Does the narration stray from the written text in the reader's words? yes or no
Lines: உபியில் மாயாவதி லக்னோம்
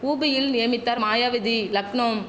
yes